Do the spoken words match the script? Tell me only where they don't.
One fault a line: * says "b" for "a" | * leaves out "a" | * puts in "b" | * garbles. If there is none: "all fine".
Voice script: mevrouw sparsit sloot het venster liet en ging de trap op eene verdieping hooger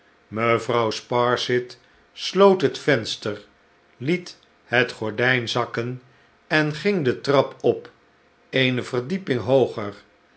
* puts in "het gordijn zakken"